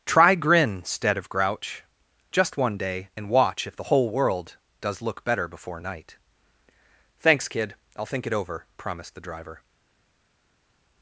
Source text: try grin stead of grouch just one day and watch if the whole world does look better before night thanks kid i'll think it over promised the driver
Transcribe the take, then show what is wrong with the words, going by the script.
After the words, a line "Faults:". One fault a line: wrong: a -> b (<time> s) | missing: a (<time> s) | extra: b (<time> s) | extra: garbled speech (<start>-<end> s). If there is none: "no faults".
try grin stead of grouch just one day and watch if the whole world does look better before night thanks kid i'll think it over promised the driver
Faults:
no faults